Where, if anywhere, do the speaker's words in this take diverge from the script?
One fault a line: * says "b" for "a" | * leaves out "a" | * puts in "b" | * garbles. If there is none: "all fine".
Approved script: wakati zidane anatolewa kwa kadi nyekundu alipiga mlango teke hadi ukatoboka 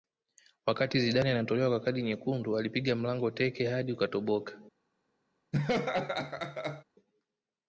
all fine